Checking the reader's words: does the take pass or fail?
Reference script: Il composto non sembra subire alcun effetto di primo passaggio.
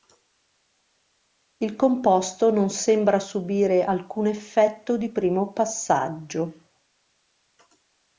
pass